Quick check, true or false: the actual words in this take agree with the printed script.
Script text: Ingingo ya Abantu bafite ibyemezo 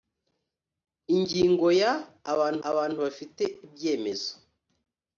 false